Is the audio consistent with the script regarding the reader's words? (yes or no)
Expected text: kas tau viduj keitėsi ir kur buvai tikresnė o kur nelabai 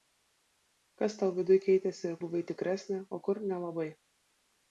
no